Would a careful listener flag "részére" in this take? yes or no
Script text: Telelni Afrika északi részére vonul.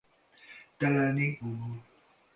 yes